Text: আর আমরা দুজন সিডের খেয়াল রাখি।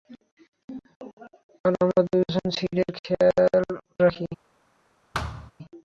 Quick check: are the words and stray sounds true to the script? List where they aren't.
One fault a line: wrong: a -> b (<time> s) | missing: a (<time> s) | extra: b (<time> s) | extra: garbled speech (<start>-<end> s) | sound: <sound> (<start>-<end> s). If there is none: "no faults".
sound: thud (5.1-5.5 s)